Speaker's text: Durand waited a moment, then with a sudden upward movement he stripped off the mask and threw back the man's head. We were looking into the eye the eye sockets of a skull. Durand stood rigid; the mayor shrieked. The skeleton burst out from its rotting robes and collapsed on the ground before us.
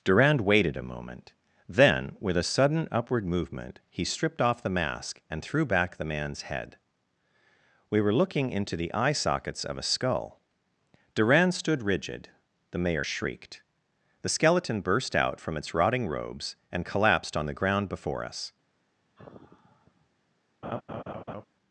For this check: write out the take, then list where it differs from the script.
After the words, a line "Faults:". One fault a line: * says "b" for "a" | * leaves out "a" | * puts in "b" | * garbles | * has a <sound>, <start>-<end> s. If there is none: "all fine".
Durand waited a moment, then with a sudden upward movement he stripped off the mask and threw back the man's head. We were looking into the eye sockets of a skull. Durand stood rigid; the mayor shrieked. The skeleton burst out from its rotting robes and collapsed on the ground before us.
Faults:
* leaves out "the eye"
* has a sigh, 19.2-20.1 s
* has a laugh, 20.6-21.4 s